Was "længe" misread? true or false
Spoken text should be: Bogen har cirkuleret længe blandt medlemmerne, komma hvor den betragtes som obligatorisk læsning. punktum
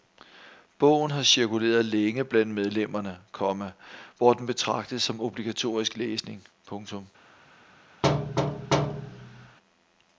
false